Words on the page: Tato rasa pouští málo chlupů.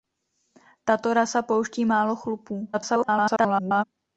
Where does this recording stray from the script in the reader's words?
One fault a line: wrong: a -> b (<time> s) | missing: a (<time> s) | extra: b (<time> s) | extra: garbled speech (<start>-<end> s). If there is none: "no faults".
extra: garbled speech (2.7-3.8 s)